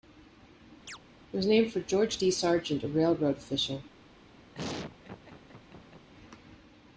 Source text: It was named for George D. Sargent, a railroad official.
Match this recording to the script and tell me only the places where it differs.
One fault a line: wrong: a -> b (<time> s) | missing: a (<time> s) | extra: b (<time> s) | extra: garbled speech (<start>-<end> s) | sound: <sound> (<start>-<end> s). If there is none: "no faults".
sound: chirp (0.9-1.0 s)
sound: laugh (4.5-6.1 s)